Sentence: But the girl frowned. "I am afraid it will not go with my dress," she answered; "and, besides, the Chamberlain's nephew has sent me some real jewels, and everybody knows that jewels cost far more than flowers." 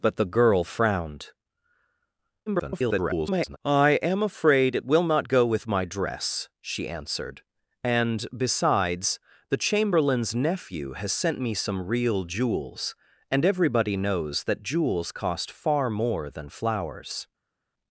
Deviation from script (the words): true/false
true